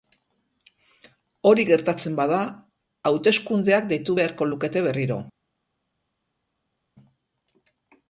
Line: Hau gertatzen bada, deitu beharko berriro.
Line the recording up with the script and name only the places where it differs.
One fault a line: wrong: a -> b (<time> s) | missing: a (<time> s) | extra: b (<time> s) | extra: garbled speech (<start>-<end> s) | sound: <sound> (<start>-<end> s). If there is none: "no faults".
wrong: Hau -> Hori (1.5 s)
extra: hauteskundeak (3.1 s)
extra: lukete (4.5 s)